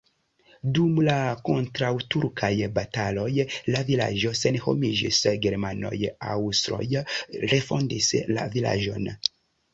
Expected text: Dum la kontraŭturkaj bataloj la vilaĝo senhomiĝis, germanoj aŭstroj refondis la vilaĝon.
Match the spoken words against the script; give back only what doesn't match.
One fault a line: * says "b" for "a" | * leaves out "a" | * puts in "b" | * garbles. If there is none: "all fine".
all fine